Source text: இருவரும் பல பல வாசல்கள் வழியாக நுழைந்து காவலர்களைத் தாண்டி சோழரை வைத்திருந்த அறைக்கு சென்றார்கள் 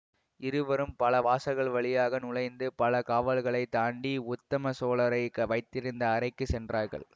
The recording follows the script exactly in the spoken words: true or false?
false